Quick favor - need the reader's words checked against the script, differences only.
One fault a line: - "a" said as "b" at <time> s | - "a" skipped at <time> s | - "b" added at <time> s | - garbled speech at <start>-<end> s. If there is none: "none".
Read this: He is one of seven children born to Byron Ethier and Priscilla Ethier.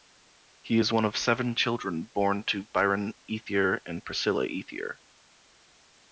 none